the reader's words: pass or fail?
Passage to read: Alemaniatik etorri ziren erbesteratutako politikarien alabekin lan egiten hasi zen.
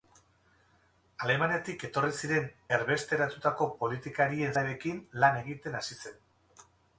pass